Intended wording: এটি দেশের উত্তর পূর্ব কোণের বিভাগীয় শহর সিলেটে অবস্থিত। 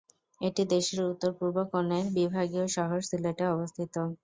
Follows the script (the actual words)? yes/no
yes